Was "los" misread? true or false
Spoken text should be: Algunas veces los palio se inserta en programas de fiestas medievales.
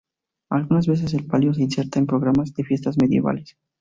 true